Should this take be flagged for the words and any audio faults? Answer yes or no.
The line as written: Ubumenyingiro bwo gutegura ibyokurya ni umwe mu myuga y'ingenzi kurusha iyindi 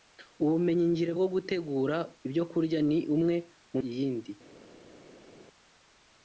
yes